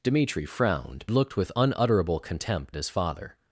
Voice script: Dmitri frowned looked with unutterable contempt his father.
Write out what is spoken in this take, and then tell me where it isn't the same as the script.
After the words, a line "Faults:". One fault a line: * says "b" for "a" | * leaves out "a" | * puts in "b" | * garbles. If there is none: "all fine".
Dmitri frowned looked with unutterable contempt his father.
Faults:
all fine